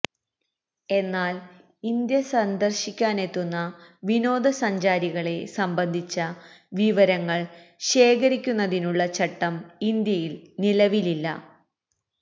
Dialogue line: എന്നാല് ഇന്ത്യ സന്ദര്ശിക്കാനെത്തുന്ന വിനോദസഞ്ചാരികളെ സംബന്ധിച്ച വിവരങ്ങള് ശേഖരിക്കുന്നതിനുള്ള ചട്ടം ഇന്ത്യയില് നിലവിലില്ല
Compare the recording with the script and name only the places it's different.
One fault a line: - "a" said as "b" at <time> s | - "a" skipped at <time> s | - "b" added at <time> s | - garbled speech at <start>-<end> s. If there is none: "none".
none